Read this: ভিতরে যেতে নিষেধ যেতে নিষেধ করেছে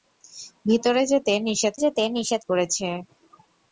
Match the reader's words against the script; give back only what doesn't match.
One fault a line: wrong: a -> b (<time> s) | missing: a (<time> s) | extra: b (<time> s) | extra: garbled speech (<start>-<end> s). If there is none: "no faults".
no faults